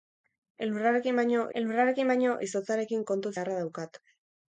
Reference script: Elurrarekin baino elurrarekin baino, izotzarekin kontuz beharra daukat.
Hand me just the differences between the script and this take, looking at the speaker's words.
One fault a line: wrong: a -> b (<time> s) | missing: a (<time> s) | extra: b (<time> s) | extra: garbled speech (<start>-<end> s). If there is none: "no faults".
no faults